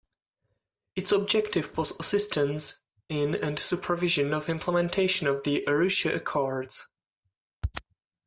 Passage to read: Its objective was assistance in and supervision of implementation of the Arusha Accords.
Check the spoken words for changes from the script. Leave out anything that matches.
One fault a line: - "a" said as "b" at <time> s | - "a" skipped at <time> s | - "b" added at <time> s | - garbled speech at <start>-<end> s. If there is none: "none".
none